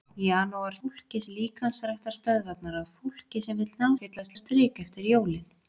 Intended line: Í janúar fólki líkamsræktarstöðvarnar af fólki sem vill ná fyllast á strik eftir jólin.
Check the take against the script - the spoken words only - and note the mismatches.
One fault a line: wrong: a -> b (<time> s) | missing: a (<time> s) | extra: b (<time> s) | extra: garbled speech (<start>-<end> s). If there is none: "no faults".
no faults